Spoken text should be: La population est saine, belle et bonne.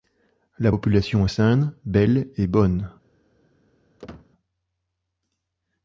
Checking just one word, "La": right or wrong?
right